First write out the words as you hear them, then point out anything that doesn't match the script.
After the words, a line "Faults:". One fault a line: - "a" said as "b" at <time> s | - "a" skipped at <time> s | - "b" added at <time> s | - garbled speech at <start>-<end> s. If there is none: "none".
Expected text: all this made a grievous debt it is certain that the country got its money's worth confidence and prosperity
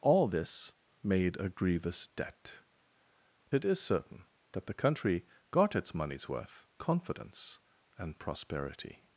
all this made a grievous debt it is certain that the country got its money's worth confidence and prosperity
Faults:
none